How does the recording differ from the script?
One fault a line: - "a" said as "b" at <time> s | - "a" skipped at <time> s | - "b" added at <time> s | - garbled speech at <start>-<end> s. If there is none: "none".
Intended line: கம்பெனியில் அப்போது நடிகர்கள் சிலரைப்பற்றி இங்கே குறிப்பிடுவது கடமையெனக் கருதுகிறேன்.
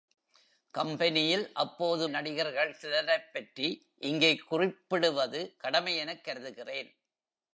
none